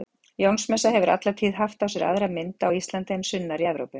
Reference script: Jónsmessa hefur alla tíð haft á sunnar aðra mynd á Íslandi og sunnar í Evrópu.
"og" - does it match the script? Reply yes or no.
no